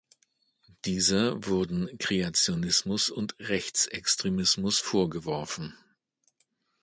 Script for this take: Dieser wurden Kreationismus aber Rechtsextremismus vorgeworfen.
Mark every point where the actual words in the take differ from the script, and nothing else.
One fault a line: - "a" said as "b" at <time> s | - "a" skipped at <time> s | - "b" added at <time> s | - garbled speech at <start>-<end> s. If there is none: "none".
- "aber" said as "und" at 3.1 s